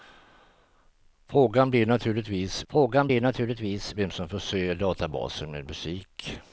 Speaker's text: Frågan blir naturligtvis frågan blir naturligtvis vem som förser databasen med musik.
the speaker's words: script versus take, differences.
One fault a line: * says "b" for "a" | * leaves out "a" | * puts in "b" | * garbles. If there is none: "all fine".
all fine